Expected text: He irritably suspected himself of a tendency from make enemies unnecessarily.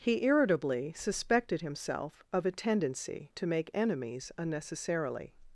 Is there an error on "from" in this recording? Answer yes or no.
yes